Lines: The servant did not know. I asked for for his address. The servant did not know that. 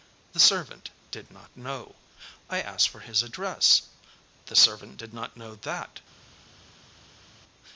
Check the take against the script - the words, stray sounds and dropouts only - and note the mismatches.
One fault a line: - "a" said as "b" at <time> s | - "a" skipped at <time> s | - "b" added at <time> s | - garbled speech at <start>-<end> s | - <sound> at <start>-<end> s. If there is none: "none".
- "for" skipped at 3.0 s